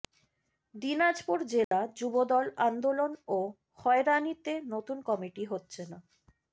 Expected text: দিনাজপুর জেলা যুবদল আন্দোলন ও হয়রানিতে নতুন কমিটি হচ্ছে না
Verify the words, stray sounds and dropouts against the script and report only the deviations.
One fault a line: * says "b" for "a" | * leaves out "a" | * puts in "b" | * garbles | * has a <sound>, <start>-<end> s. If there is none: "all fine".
* has a dropout, 1.6-1.7 s